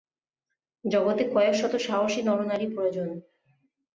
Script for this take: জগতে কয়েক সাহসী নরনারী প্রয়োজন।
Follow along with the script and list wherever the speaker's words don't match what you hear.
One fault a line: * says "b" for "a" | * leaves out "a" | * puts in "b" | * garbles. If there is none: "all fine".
* puts in "শত"